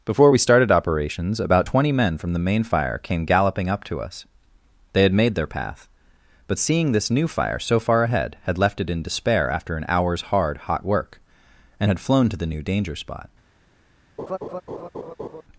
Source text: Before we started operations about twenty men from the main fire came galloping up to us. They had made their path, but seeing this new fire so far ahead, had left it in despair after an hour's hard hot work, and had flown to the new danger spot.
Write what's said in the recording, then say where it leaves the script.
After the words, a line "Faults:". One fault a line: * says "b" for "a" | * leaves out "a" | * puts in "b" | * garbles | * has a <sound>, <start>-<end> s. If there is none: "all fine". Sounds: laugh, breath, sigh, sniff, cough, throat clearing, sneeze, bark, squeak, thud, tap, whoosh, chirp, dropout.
Before we started operations about twenty men from the main fire came galloping up to us. They had made their path, but seeing this new fire so far ahead, had left it in despair after an hour's hard hot work, and had flown to the new danger spot.
Faults:
* has a laugh, 14.2-15.4 s